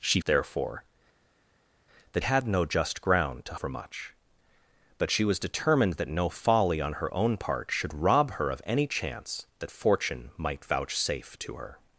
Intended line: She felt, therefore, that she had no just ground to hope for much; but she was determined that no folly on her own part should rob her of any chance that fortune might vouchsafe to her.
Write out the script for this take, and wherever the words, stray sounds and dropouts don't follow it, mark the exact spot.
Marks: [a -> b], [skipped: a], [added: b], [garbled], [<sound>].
She [skipped: felt,] therefore, that [skipped: she] had no just ground to [skipped: hope] for much; but she was determined that no folly on her own part should rob her of any chance that fortune might vouchsafe to her.